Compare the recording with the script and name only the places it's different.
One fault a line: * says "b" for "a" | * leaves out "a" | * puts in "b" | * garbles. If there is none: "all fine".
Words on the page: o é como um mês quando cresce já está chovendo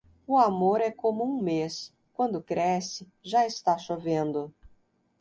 * puts in "amor"